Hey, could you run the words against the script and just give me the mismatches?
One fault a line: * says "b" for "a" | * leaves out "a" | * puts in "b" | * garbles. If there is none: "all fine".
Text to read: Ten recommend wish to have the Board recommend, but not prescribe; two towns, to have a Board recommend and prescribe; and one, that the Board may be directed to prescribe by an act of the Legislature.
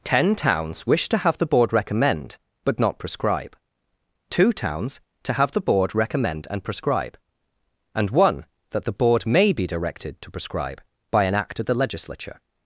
* says "towns" for "recommend"
* says "the" for "a"